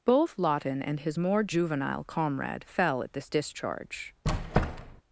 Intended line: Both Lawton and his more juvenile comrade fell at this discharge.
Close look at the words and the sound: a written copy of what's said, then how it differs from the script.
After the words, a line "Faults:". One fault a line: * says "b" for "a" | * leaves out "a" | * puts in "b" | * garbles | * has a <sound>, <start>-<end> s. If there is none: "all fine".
Both Lawton and his more juvenile comrade fell at this discharge.
Faults:
* has a squeak, 4.2-5.0 s